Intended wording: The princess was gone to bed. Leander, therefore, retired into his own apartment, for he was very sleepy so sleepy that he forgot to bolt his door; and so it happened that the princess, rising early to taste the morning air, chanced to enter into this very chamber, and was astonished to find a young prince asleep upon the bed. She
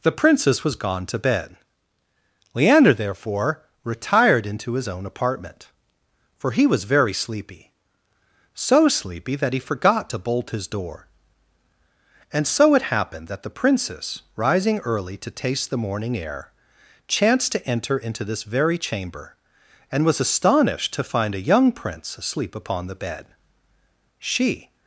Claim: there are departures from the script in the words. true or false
false